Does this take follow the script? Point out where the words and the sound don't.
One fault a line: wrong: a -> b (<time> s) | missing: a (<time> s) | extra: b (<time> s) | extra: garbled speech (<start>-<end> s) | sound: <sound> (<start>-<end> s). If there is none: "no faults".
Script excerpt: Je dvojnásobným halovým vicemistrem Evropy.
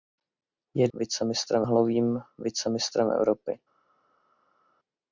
wrong: dvojnásobným -> vicemistrem (0.9 s)